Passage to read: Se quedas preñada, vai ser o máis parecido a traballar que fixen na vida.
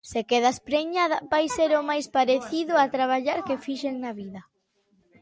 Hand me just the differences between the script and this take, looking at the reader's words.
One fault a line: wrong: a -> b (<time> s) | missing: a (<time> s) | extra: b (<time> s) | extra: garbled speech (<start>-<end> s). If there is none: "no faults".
no faults